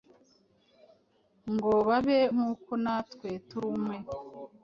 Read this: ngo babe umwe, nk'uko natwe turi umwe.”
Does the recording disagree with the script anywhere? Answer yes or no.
yes